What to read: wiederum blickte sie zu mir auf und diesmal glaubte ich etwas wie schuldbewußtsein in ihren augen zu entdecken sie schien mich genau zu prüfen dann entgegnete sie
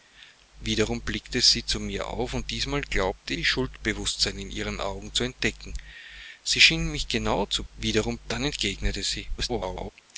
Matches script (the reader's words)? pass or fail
fail